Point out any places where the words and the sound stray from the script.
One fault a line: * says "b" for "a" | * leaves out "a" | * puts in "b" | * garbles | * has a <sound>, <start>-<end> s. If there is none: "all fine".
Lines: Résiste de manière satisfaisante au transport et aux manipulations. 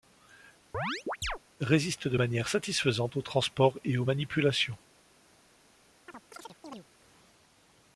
* has a chirp, 0.7-1.4 s
* has a chirp, 6.1-6.9 s